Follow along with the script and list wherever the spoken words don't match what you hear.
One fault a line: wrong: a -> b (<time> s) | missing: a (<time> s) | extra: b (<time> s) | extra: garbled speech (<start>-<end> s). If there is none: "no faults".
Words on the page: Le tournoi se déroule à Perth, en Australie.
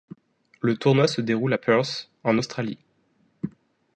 no faults